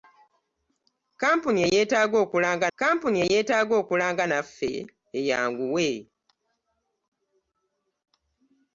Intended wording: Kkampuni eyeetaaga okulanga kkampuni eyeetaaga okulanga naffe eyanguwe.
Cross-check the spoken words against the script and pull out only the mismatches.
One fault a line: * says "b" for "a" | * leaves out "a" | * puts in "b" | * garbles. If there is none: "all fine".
all fine